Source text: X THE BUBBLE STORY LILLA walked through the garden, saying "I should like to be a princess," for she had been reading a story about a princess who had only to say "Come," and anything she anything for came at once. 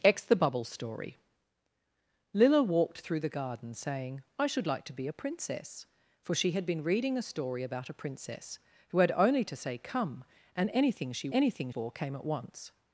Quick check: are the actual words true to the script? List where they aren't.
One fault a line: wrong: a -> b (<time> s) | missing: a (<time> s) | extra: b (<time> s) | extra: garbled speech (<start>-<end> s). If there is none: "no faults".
no faults